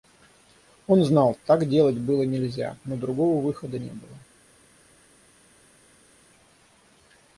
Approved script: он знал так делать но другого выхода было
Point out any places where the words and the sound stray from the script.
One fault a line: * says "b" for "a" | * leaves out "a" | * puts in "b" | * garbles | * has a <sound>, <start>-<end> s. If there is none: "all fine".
* puts in "было нельзя"
* puts in "не"